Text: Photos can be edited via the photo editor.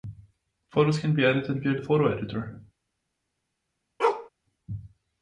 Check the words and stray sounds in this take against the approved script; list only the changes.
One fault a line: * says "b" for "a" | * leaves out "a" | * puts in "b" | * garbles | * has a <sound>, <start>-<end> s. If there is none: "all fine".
* leaves out "the"
* has a bark, 4.0-4.3 s